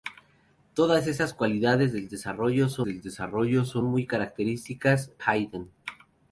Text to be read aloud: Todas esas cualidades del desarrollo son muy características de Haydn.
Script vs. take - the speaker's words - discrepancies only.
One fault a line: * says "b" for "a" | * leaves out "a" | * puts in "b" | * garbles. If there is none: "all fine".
* puts in "del desarrollo son"
* leaves out "de"